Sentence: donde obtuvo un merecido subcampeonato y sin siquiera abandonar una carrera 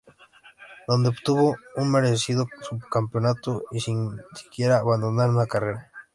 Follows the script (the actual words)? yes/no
yes